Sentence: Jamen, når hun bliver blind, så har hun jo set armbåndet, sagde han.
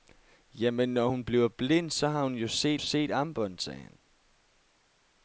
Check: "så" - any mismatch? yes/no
no